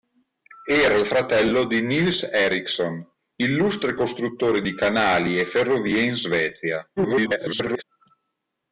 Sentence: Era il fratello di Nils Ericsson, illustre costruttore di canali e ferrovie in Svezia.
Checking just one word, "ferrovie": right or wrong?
right